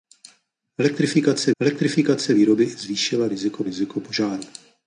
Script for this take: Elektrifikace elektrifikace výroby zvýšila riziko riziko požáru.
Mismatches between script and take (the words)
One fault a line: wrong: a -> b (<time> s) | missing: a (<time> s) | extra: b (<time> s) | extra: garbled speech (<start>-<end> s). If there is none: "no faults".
no faults